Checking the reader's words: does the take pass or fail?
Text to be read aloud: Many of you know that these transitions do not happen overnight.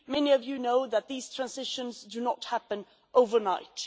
pass